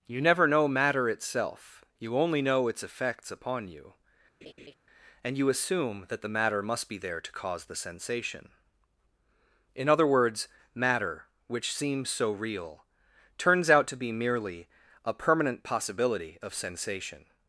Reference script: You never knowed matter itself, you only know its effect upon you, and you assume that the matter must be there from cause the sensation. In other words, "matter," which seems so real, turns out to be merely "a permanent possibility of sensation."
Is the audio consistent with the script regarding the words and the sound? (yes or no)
no